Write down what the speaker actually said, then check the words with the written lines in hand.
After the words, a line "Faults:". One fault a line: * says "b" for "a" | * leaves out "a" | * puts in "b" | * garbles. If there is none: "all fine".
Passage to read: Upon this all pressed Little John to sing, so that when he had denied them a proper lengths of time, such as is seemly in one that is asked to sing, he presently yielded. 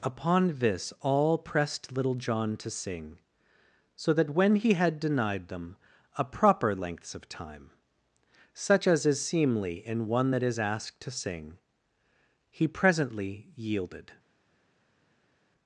Upon this all pressed Little John to sing, so that when he had denied them a proper lengths of time, such as is seemly in one that is asked to sing, he presently yielded.
Faults:
all fine